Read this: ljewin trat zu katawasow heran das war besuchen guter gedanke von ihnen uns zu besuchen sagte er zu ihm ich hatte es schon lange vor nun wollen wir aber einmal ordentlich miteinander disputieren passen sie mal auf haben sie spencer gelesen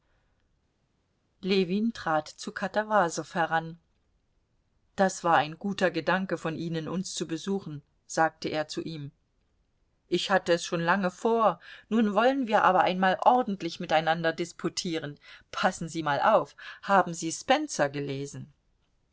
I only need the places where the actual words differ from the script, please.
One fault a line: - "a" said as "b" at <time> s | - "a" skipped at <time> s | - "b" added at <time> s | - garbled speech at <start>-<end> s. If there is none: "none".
- "besuchen" said as "ein" at 5.4 s